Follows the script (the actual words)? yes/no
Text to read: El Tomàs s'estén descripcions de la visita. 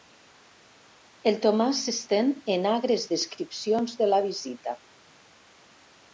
no